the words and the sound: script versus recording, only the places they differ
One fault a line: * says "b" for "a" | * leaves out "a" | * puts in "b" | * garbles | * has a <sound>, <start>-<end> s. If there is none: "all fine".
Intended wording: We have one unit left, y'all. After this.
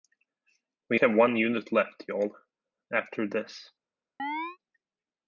* has a chirp, 4.2-4.6 s